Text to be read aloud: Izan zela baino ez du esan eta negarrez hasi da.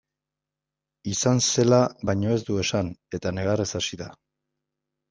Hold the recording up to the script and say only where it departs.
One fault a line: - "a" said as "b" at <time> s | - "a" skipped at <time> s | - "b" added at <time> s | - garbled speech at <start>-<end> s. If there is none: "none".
none